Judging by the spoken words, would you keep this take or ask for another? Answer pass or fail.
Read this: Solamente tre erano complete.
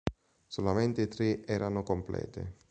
pass